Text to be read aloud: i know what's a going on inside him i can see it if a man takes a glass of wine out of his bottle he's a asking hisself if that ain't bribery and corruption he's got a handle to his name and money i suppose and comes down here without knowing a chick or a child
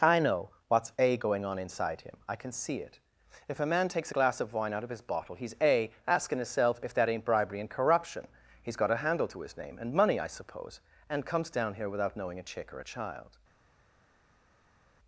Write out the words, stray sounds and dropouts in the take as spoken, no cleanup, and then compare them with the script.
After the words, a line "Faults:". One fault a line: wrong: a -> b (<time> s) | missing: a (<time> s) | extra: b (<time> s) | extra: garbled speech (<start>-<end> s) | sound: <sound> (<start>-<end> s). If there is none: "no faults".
i know what's a going on inside him i can see it if a man takes a glass of wine out of his bottle he's a asking himself if that ain't bribery and corruption he's got a handle to his name and money i suppose and comes down here without knowing a chick or a child
Faults:
wrong: hisself -> himself (6.4 s)